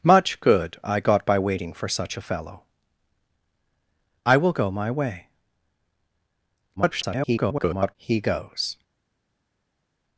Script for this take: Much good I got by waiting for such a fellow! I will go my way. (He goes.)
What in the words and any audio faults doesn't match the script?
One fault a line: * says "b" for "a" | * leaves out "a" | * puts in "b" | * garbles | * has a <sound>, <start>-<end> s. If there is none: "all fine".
* garbles